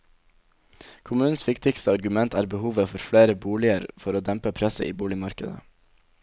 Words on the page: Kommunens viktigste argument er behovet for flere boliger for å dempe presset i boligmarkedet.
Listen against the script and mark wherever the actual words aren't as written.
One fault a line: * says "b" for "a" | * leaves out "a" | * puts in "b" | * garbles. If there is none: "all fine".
all fine